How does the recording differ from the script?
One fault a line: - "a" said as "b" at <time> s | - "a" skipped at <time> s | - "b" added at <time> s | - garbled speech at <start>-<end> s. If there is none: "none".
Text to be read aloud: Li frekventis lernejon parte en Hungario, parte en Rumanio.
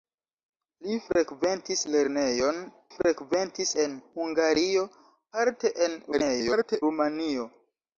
- "parte" said as "frekventis" at 3.0 s
- garbled speech at 6.1-6.8 s